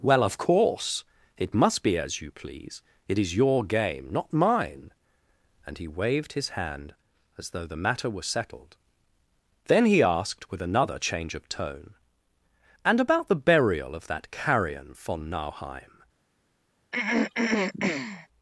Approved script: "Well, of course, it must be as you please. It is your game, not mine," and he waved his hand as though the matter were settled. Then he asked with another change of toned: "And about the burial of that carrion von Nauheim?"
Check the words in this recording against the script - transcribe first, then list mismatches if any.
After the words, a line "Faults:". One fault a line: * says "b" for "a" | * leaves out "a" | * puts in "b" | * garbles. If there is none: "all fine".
"Well, of course, it must be as you please. It is your game, not mine," and he waved his hand as though the matter were settled. Then he asked with another change of tone: "And about the burial of that carrion von Nauheim?"
Faults:
* says "tone" for "toned"